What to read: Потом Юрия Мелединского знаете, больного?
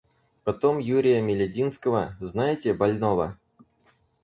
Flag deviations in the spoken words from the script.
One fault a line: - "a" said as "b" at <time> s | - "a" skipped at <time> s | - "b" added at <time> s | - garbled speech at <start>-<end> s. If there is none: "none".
none